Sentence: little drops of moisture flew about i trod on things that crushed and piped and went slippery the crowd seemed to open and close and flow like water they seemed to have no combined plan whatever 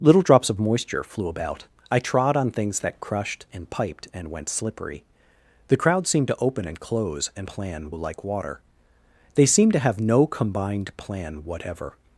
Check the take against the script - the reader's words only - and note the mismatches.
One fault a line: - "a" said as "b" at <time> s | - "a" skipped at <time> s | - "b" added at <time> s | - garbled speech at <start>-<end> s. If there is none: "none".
- "flow" said as "plan" at 7.4 s